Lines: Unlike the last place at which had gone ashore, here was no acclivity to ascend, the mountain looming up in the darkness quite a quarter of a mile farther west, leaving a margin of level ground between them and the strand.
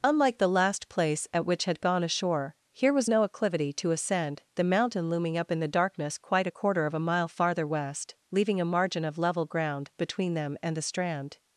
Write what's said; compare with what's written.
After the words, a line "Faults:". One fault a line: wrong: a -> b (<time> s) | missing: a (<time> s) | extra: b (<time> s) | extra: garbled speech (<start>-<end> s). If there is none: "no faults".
Unlike the last place at which had gone ashore, here was no acclivity to ascend, the mountain looming up in the darkness quite a quarter of a mile farther west, leaving a margin of level ground between them and the strand.
Faults:
no faults